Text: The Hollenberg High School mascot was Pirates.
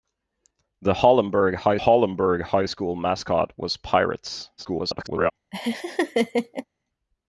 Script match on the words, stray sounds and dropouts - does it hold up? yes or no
no